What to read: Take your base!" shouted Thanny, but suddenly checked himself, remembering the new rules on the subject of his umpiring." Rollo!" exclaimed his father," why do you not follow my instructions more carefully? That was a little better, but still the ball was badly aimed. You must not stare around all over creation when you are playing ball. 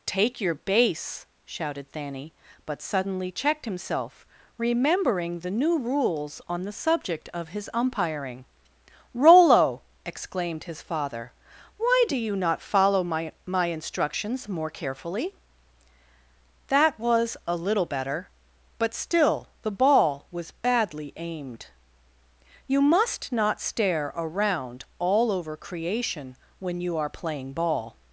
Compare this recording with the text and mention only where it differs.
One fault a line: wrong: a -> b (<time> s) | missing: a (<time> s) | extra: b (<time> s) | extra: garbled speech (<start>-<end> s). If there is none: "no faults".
extra: my (13.4 s)